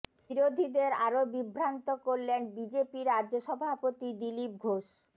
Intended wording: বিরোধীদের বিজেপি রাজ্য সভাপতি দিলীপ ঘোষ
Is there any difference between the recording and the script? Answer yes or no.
yes